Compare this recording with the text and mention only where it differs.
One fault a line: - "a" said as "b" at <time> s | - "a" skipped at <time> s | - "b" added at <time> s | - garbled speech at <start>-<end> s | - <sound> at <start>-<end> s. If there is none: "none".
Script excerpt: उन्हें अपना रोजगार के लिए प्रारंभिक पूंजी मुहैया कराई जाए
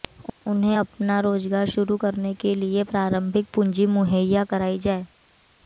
- "शुरू करने" added at 1.7 s